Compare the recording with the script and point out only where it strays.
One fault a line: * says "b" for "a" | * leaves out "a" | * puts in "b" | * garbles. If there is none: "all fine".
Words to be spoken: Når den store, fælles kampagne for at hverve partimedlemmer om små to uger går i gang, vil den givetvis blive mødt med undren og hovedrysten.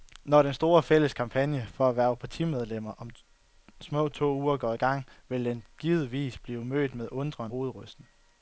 * leaves out "og"